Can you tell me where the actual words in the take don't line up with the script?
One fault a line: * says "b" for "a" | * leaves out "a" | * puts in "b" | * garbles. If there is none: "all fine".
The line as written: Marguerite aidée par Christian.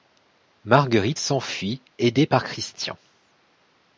* puts in "s'enfuit"